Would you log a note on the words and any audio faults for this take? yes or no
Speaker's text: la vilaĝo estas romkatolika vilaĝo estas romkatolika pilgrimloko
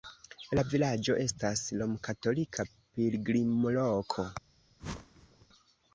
yes